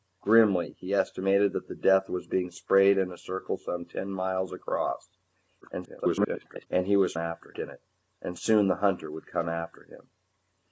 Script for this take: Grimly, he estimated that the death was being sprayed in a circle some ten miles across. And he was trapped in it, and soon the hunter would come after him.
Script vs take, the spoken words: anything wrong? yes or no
yes